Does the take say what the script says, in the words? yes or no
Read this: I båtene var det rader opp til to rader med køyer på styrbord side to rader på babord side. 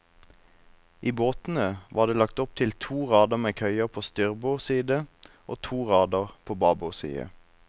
no